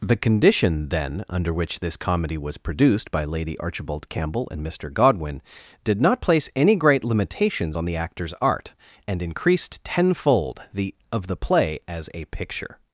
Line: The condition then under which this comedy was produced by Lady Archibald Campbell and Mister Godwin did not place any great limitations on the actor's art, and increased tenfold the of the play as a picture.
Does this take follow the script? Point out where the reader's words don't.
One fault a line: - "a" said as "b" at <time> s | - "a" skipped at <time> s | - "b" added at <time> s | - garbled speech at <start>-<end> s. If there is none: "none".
none